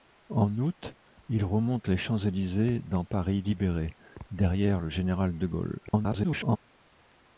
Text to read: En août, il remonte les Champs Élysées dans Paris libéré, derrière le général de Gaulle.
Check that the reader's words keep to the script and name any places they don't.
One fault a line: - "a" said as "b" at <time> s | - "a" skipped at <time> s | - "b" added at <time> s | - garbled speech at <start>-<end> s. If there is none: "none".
- garbled speech at 5.9-6.6 s